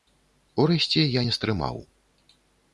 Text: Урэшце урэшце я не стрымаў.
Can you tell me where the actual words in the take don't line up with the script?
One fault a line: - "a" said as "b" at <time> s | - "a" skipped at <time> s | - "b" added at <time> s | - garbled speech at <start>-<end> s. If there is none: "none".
- "урэшце" skipped at 1.1 s